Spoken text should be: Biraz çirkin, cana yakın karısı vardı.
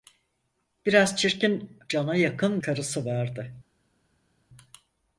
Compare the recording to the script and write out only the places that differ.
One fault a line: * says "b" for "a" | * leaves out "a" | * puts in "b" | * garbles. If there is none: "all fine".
all fine